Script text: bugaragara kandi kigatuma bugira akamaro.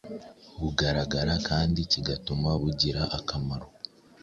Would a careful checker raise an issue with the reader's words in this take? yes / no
no